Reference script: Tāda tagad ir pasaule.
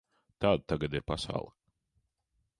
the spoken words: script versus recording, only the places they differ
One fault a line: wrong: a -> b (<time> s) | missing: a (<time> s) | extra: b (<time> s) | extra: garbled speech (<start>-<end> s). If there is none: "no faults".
no faults